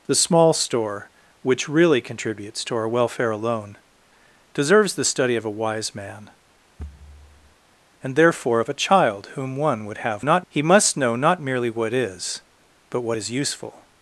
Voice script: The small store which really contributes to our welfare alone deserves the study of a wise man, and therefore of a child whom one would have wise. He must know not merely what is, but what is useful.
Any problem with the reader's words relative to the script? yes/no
yes